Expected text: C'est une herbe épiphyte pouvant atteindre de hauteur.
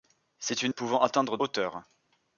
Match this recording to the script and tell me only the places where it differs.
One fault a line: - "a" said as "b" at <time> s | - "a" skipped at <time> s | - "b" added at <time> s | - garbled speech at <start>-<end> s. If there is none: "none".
- "herbe épiphyte" skipped at 0.7 s
- "de" skipped at 1.4 s